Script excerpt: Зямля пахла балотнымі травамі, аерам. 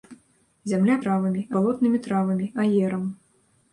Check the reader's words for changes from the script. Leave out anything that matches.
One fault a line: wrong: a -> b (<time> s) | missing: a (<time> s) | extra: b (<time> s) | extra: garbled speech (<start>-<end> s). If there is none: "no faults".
wrong: пахла -> травамі (1.0 s)